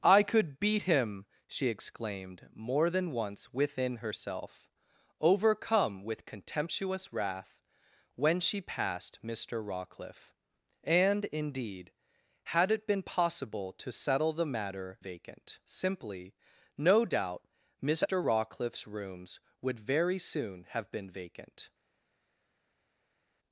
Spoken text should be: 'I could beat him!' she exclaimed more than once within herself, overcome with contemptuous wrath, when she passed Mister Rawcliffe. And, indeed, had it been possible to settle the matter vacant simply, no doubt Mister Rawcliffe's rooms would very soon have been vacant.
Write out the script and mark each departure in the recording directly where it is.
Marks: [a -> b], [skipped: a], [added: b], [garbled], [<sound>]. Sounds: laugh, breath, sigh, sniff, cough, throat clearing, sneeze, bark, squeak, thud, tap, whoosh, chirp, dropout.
'I could beat him!' she exclaimed more than once within herself, overcome with contemptuous wrath, when she passed Mister Rawcliffe. And, indeed, had it been possible to settle the matter vacant simply, no doubt Mister Rawcliffe's rooms would very soon have been vacant.